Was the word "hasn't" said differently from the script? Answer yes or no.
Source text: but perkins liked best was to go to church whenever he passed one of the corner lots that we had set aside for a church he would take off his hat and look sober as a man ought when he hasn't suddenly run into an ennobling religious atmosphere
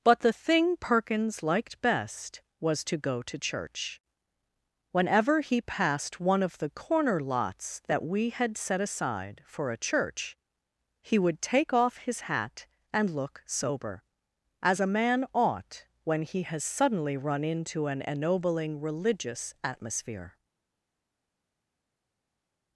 yes